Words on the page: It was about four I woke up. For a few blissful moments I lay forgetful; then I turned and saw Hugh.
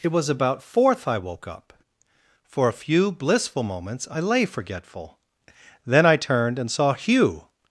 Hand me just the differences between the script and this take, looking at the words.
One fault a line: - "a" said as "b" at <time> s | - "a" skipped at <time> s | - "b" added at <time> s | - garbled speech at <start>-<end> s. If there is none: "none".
- "four" said as "fourth" at 0.6 s